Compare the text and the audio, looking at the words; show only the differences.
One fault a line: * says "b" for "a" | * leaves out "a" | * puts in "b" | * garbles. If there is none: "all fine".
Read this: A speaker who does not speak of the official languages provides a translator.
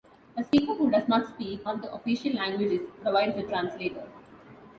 all fine